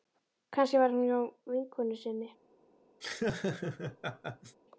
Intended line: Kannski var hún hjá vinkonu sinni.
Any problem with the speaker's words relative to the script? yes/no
no